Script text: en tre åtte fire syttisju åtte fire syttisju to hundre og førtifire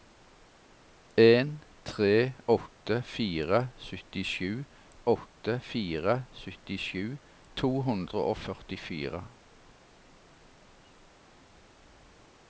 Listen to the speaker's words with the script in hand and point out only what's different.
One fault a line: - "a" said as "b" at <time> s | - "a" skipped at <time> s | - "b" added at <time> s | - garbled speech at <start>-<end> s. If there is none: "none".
none